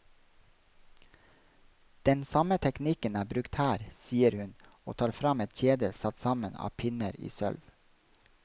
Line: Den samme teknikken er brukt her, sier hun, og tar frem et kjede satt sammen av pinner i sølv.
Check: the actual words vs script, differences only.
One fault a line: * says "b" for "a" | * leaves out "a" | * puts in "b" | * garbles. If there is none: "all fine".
all fine